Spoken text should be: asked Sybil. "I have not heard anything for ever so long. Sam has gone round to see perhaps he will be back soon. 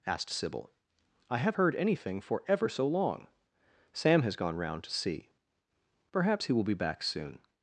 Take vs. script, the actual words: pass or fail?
fail